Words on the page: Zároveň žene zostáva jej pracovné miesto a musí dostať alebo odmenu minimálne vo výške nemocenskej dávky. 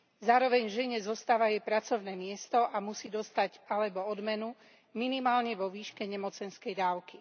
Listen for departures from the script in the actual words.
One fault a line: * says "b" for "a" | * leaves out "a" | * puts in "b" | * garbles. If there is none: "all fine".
all fine